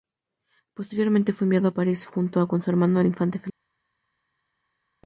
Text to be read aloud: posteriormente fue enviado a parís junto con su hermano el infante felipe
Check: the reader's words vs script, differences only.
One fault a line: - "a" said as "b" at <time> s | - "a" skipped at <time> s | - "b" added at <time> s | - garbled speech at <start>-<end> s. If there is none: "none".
none